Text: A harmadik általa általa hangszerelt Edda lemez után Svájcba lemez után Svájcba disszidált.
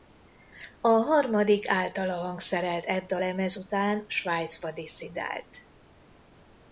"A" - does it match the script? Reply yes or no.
yes